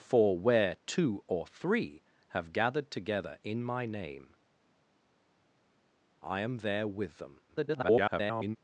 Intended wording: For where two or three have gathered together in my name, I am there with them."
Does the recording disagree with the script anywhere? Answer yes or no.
yes